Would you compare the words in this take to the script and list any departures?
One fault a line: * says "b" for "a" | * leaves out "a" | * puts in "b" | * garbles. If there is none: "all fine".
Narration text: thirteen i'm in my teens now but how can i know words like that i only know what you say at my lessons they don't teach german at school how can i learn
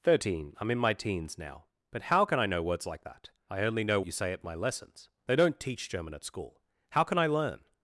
* leaves out "what"